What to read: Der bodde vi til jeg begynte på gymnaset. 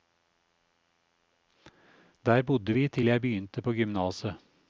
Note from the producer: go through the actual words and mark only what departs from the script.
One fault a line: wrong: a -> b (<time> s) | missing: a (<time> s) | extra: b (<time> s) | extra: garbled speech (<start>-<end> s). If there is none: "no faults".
no faults